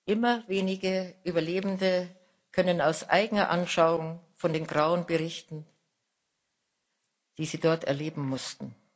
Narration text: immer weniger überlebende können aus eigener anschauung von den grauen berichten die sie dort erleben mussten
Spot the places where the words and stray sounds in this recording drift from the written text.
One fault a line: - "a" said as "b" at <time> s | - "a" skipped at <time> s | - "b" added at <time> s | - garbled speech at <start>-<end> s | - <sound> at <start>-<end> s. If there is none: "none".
none